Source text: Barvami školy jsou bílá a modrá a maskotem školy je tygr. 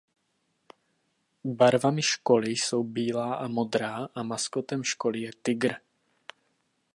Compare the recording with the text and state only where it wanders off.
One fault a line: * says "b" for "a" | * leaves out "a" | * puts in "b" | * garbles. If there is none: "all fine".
all fine